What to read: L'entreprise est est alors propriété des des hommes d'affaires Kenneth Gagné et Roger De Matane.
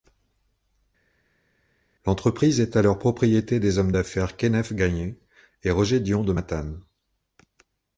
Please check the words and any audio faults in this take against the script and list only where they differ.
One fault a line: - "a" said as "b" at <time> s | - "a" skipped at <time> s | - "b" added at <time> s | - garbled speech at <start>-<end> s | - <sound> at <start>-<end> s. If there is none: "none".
- "est" skipped at 2.8 s
- "des" skipped at 3.8 s
- "Dion" added at 6.0 s